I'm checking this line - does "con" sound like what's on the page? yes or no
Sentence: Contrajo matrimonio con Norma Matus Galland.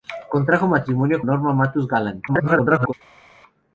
no